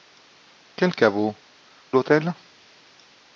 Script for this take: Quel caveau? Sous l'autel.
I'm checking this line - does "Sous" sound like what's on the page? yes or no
no